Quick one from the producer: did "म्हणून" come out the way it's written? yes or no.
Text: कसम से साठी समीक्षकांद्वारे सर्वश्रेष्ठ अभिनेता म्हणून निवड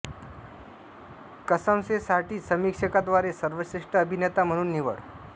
yes